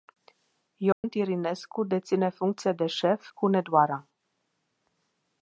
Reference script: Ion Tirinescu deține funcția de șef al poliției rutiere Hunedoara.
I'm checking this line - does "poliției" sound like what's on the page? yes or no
no